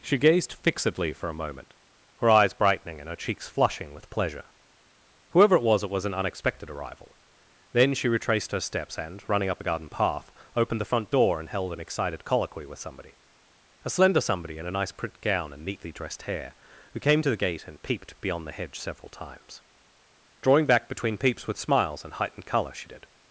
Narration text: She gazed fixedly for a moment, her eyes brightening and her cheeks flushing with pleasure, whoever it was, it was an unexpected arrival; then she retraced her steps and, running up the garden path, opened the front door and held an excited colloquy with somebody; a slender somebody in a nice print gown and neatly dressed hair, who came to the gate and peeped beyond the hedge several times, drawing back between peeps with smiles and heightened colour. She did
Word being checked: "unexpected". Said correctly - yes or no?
yes